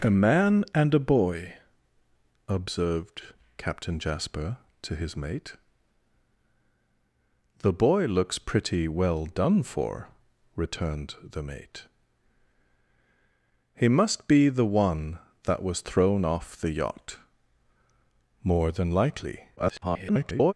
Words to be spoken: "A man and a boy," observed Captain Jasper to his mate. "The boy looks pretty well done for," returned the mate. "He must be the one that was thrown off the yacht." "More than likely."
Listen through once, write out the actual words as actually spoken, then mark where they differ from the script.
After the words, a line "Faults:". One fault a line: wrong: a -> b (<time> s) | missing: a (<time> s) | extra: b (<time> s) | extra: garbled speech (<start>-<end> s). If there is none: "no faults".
"A man and a boy," observed Captain Jasper to his mate. "The boy looks pretty well done for," returned the mate. "He must be the one that was thrown off the yacht." "More than likely." [garbled]
Faults:
extra: garbled speech (19.6-20.5 s)